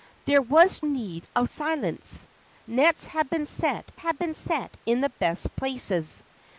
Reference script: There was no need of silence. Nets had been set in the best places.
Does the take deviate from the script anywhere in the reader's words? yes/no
yes